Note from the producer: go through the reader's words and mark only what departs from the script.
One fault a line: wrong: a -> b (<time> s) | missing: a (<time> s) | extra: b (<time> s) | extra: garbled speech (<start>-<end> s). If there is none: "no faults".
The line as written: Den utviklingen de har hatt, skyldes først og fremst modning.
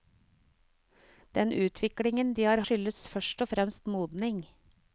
missing: hatt (2.6 s)